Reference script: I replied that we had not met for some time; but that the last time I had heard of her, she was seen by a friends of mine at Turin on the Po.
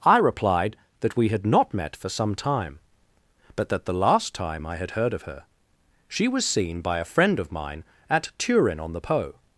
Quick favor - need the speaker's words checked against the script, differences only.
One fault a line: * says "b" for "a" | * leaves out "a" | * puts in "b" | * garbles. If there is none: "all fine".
* says "friend" for "friends"